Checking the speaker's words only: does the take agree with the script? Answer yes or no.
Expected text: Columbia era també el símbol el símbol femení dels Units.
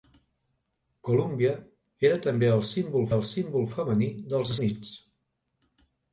yes